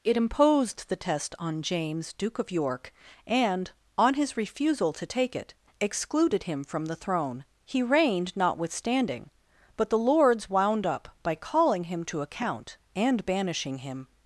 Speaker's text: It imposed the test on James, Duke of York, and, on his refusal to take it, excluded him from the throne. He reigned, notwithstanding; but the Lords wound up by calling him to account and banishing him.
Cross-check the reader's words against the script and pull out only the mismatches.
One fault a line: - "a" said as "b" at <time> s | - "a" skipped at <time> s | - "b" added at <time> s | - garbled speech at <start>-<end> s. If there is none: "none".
none